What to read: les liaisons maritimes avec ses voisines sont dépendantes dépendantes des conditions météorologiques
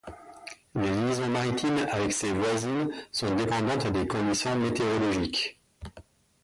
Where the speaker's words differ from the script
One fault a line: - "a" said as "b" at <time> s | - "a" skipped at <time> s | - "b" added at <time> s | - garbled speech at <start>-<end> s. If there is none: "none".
- "dépendantes" skipped at 3.9 s